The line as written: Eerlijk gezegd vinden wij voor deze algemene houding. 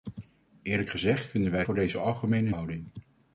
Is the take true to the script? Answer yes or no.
yes